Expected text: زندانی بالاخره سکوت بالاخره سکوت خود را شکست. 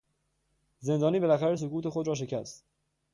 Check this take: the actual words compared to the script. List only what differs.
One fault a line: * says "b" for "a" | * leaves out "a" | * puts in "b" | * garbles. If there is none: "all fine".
* leaves out "بالاخره سکوت"